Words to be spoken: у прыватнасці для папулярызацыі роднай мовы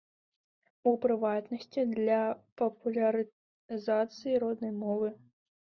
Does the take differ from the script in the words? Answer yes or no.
no